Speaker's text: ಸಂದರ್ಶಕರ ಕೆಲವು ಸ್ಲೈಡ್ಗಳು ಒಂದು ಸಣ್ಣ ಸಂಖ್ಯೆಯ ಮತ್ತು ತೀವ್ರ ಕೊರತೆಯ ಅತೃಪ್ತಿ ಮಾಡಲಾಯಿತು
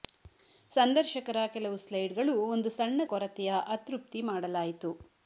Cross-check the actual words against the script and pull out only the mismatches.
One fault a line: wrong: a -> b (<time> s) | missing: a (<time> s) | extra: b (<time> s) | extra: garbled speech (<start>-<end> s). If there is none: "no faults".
missing: ಸಂಖ್ಯೆಯ ಮತ್ತು ತೀವ್ರ (3.0 s)